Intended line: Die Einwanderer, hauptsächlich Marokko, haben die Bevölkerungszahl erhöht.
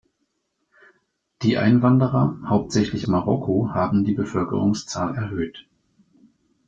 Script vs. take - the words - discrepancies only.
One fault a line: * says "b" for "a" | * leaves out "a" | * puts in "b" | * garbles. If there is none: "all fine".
all fine